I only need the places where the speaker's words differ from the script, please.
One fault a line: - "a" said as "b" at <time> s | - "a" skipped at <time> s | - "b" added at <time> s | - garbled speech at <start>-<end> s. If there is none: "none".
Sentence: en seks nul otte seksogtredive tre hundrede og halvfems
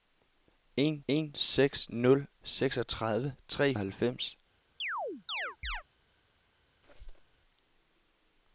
- "en" added at 1.1 s
- "otte" skipped at 2.3 s
- "hundrede" skipped at 3.7 s